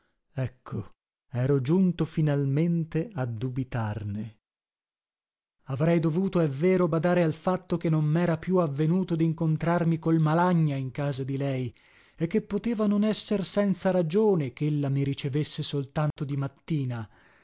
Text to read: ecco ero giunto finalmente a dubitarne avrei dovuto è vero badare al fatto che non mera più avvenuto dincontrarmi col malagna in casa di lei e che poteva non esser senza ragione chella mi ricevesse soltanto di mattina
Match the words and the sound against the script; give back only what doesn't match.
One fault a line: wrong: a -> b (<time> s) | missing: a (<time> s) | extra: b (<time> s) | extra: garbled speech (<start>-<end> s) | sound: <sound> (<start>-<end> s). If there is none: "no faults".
sound: dropout (16.1-16.2 s)